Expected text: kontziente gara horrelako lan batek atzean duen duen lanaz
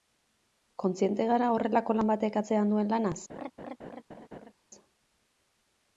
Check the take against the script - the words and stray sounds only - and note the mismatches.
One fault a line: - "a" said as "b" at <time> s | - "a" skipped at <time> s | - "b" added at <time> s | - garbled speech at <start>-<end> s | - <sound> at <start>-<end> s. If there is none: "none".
- "duen" skipped at 2.9 s
- laugh at 3.3-4.5 s